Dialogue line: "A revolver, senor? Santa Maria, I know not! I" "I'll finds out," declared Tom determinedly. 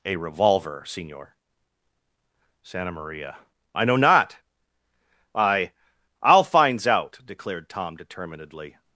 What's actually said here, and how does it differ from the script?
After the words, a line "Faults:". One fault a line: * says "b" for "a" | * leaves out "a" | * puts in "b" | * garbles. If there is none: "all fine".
"A revolver, senor? Santa Maria, I know not! I" "I'll finds out," declared Tom determinedly.
Faults:
all fine